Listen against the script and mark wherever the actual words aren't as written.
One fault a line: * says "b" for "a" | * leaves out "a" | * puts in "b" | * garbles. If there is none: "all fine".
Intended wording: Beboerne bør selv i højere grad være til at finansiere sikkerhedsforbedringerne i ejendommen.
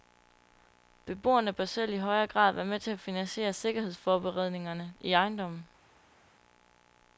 * puts in "med"